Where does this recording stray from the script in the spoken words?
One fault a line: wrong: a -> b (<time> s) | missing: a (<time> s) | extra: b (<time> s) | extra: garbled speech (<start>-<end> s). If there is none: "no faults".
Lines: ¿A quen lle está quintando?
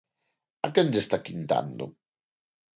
no faults